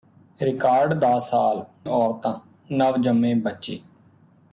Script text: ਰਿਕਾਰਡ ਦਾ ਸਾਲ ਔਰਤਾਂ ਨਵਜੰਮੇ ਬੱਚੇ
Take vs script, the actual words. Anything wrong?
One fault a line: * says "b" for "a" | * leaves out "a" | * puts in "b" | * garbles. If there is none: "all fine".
all fine